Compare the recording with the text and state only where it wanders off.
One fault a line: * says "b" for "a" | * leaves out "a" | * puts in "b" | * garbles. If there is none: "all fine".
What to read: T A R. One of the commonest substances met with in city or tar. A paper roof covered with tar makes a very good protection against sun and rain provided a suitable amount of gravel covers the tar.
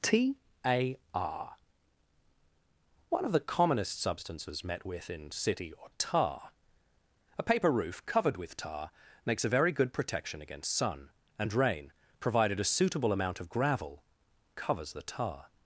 all fine